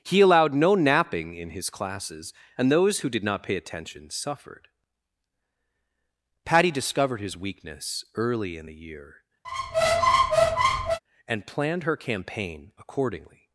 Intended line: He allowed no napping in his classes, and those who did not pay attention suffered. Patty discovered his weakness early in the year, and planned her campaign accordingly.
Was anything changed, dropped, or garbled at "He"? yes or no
no